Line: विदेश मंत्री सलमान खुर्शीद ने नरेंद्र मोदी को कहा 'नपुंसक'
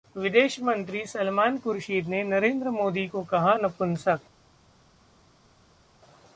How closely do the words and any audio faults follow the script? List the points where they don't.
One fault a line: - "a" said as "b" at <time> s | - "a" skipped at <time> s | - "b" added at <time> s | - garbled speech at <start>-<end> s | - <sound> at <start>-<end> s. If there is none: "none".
none